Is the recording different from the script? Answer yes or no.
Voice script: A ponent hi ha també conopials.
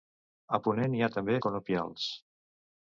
no